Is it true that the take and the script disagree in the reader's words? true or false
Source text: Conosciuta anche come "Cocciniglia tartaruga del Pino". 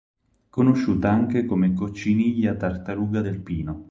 false